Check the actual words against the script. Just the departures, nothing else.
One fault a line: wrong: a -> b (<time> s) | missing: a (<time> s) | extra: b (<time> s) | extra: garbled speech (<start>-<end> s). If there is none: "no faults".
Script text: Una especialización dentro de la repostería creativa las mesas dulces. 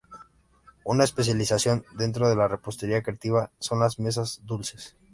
extra: son (3.6 s)